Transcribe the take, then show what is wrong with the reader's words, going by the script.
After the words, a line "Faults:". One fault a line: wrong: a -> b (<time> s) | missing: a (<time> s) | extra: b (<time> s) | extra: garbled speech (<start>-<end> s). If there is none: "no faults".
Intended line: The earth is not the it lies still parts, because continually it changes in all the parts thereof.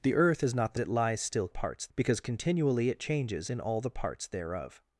The earth is not the it lies still parts, because continually it changes in all the parts thereof.
Faults:
no faults